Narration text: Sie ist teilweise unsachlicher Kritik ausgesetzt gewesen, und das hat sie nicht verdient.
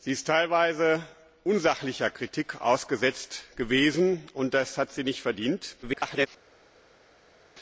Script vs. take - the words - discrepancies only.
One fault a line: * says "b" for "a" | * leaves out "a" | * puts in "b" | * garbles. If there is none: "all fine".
* garbles